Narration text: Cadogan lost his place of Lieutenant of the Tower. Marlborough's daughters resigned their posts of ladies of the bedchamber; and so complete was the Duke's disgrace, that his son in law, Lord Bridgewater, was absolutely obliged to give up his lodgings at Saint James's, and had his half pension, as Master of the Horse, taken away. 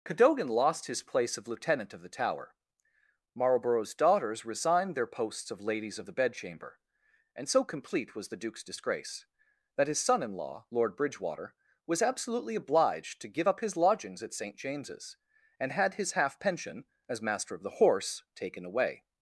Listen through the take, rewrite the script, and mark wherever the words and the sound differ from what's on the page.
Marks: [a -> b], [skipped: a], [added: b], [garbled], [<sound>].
Cadogan lost his place of Lieutenant of the Tower. Marlborough's daughters resigned their posts of ladies of the bedchamber; and so complete was the Duke's disgrace, that his son in law, Lord Bridgewater, was absolutely obliged to give up his lodgings at Saint James's, and had his half pension, as Master of the Horse, taken away.